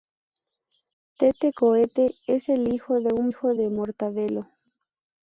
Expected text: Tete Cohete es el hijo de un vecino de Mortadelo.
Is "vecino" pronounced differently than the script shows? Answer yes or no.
yes